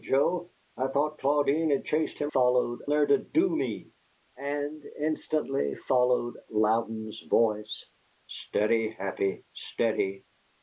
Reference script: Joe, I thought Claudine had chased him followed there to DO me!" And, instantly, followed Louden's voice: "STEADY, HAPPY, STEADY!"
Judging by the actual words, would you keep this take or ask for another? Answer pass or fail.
pass